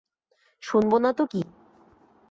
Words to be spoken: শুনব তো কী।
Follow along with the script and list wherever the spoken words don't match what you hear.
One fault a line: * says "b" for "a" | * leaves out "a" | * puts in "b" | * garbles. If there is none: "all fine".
* puts in "না"